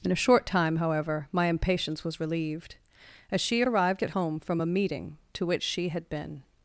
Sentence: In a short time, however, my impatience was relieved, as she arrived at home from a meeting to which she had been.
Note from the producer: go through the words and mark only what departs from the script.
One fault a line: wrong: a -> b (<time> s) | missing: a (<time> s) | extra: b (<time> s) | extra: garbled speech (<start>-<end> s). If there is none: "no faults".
no faults